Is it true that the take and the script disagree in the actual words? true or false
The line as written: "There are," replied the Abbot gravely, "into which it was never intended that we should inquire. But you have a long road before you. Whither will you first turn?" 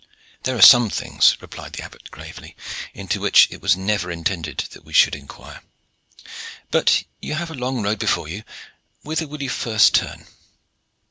true